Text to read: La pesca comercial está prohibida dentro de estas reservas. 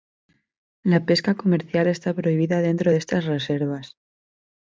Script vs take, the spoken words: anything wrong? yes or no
no